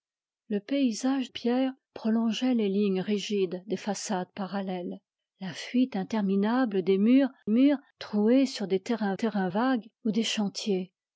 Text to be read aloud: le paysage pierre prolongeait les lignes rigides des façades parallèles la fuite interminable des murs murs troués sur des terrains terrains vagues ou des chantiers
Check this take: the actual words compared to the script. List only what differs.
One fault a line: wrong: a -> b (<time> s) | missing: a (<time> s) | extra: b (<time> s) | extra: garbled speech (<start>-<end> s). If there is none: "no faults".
no faults